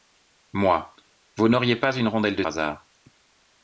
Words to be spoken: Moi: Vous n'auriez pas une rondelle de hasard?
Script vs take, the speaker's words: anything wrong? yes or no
no